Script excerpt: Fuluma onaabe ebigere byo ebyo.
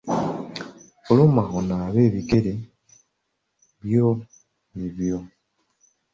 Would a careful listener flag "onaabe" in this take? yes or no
no